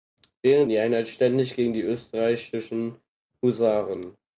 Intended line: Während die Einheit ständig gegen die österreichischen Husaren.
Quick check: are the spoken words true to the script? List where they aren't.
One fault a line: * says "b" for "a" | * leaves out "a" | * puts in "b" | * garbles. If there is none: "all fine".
all fine